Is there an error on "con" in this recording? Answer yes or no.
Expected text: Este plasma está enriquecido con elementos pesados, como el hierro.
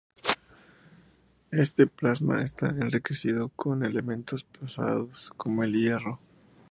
no